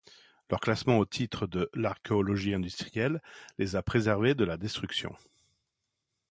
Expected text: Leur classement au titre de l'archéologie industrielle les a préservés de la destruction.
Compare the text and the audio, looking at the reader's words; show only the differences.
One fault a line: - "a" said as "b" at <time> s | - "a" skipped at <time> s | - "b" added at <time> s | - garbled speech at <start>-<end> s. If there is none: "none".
none